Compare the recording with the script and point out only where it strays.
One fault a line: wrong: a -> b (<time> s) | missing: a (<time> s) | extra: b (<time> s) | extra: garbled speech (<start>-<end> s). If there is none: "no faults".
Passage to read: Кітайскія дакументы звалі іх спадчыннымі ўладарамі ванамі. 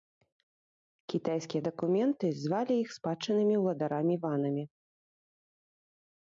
no faults